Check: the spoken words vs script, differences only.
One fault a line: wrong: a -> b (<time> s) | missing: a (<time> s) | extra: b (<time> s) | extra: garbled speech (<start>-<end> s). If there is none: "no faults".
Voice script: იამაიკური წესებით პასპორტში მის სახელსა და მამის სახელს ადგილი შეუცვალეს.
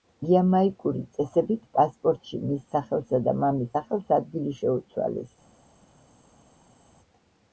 no faults